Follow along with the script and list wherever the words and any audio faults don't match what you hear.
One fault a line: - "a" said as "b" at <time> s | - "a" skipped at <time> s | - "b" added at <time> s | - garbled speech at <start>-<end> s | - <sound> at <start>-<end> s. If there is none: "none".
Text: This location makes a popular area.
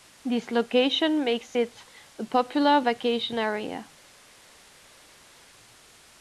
- "it" added at 1.5 s
- "vacation" added at 2.8 s